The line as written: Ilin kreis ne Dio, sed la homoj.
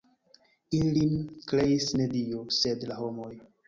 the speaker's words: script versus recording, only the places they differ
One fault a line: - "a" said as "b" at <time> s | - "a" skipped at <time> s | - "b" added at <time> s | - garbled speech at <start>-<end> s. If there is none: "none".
none